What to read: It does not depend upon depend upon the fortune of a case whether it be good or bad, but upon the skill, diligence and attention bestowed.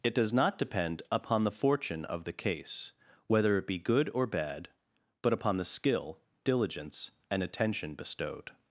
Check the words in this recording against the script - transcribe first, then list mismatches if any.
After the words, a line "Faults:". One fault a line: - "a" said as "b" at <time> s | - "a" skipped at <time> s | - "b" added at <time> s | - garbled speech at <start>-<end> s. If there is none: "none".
It does not depend upon the fortune of the case whether it be good or bad, but upon the skill, diligence and attention bestowed.
Faults:
- "depend upon" skipped at 1.4 s
- "a" said as "the" at 2.2 s